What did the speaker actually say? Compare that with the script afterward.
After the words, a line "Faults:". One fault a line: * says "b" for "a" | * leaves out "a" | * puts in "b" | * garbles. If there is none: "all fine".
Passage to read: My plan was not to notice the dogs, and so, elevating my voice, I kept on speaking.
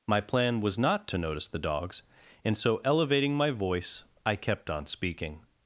My plan was not to notice the dogs, and so, elevating my voice, I kept on speaking.
Faults:
all fine